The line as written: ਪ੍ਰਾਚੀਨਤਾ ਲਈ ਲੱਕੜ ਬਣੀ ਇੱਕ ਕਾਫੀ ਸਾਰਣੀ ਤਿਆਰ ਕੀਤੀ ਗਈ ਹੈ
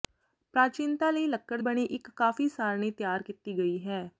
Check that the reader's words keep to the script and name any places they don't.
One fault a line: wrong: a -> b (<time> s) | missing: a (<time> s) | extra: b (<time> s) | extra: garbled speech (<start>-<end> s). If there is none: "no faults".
no faults